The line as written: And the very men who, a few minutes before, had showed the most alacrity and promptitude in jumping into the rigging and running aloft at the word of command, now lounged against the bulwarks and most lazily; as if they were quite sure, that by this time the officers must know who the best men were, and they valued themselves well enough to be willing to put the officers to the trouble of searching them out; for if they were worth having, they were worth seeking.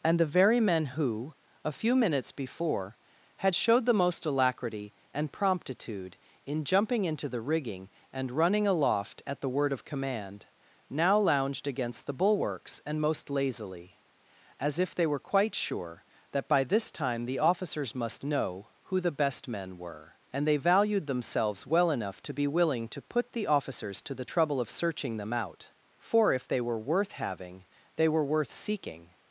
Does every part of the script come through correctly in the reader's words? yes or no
yes